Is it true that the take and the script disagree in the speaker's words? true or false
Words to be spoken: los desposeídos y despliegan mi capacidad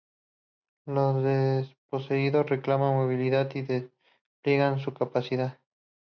true